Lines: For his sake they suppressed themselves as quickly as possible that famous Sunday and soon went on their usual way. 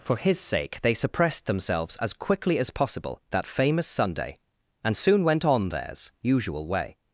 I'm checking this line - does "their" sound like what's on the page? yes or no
no